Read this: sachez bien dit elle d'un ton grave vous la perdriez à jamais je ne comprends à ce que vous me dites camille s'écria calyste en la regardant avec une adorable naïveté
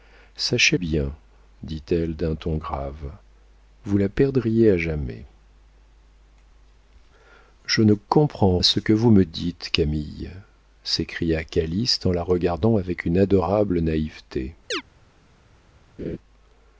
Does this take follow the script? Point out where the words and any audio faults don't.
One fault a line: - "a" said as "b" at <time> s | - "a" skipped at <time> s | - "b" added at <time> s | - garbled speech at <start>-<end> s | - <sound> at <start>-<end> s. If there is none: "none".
- chirp at 14.7-14.8 s
- laugh at 16.0-16.2 s